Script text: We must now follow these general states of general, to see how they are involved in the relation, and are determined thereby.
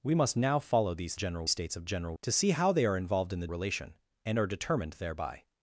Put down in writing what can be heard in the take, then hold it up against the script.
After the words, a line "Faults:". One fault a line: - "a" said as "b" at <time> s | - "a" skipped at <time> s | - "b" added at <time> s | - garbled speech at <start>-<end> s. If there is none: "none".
We must now follow these general states of general, to see how they are involved in the relation, and are determined thereby.
Faults:
none